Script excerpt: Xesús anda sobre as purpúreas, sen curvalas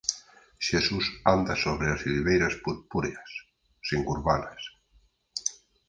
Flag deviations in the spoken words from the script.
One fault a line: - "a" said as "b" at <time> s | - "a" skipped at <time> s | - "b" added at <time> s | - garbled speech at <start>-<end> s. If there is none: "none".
- "silveiras" added at 2.0 s